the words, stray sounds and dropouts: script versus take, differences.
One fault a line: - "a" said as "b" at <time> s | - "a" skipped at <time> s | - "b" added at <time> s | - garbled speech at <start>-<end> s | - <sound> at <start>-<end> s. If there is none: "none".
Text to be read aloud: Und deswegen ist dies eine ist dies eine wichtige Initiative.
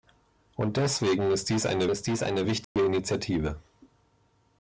- dropout at 2.6-2.8 s